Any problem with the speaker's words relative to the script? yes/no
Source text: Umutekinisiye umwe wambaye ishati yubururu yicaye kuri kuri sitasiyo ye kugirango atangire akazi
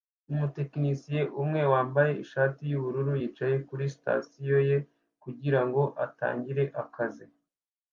yes